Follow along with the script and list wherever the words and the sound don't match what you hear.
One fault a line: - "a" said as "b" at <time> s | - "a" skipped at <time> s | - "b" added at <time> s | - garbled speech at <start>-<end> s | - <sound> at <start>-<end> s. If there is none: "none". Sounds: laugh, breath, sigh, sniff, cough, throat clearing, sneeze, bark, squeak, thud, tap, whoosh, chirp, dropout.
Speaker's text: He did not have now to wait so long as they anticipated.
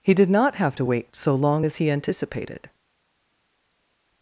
- "now" skipped at 0.8 s
- "they" said as "he" at 1.8 s